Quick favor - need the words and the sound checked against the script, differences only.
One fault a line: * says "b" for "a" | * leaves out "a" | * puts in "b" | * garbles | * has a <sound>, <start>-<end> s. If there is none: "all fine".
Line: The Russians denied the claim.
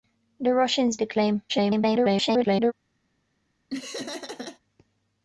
* leaves out "denied"
* garbles
* has a laugh, 3.7-4.6 s